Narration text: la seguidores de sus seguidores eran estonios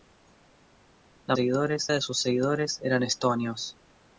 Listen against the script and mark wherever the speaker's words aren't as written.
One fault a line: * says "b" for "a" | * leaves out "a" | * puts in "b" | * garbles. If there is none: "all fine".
all fine